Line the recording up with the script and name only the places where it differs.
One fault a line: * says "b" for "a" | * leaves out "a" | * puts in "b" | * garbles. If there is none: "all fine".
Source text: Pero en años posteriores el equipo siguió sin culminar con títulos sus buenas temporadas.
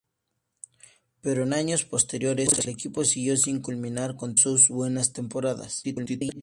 * leaves out "títulos"
* garbles